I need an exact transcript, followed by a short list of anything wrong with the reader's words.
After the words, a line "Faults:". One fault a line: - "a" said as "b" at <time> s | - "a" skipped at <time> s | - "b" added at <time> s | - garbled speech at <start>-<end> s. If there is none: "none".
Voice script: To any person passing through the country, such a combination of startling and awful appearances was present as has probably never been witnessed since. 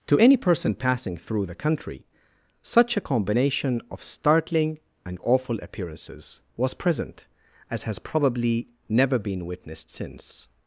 To any person passing through the country, such a combination of startling and awful appearances was present as has probably never been witnessed since.
Faults:
none